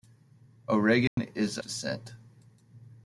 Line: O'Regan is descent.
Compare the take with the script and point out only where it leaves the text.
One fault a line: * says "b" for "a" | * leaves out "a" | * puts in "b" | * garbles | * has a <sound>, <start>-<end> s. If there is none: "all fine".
* has a dropout, 1.1-1.2 s